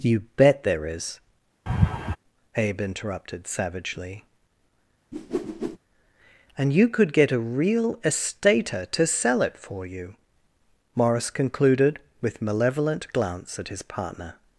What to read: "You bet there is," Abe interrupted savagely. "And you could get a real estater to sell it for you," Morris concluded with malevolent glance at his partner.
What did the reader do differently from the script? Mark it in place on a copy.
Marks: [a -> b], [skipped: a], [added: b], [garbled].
"You bet there is," Abe interrupted savagely. "And you could get a real estater to sell it for you," Morris concluded with malevolent glance at his partner.